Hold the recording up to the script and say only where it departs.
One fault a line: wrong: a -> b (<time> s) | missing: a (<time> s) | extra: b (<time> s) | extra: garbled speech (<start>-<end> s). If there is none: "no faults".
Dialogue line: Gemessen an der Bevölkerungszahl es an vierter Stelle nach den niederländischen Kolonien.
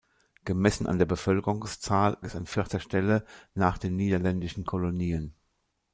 no faults